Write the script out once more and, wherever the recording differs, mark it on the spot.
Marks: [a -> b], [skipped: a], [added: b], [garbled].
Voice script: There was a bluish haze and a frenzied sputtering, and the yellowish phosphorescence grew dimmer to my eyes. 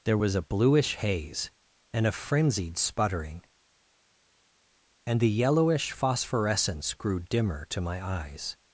There was a bluish haze and a frenzied sputtering, and the yellowish phosphorescence grew dimmer to my eyes.